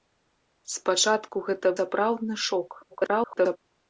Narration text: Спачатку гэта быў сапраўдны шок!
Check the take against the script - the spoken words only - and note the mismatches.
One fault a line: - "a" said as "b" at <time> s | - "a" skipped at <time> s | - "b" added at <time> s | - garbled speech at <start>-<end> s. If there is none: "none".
- "быў" skipped at 1.8 s
- garbled speech at 2.9-3.6 s